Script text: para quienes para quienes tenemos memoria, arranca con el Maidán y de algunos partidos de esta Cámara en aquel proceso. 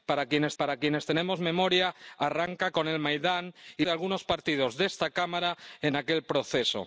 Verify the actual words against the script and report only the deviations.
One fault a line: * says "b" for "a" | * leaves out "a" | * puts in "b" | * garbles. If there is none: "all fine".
all fine